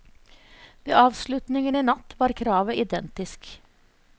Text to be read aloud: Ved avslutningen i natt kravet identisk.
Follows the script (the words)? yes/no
no